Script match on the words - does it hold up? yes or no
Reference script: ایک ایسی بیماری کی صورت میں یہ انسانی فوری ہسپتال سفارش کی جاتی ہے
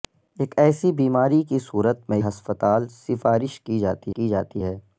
no